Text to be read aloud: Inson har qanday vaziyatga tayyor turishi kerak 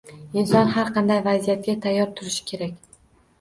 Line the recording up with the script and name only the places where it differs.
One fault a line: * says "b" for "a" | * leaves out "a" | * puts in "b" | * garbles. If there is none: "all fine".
all fine